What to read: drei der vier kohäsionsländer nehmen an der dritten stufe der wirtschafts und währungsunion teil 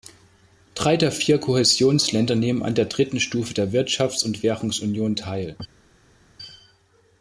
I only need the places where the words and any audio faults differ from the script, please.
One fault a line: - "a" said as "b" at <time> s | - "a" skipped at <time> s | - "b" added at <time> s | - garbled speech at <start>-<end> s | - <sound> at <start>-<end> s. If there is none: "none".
none